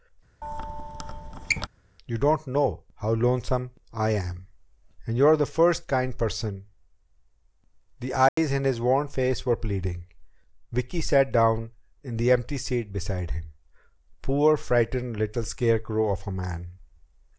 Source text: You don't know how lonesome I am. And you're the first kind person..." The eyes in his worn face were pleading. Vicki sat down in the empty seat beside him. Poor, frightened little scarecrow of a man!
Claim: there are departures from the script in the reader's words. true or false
false